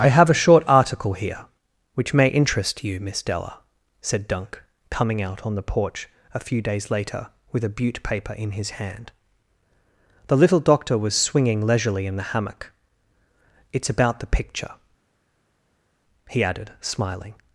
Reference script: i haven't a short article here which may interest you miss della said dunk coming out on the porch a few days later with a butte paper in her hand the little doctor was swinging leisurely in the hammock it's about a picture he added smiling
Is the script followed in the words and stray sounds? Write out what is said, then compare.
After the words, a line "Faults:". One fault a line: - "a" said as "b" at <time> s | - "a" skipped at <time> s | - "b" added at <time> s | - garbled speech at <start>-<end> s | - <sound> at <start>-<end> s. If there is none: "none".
i have a short article here which may interest you miss della said dunk coming out on the porch a few days later with a butte paper in his hand the little doctor was swinging leisurely in the hammock it's about the picture he added smiling
Faults:
- "haven't" said as "have" at 0.1 s
- "her" said as "his" at 8.5 s
- "a" said as "the" at 14.2 s